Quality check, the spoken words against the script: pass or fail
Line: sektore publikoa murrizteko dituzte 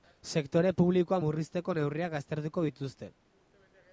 fail